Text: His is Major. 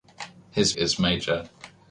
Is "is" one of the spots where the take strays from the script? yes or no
no